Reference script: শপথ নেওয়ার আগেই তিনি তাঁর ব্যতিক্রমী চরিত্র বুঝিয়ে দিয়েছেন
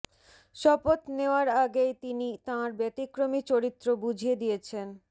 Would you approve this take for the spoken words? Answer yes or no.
yes